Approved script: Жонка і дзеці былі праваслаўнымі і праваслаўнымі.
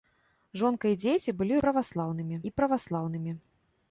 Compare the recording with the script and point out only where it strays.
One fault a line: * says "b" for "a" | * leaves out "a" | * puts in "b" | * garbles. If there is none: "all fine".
all fine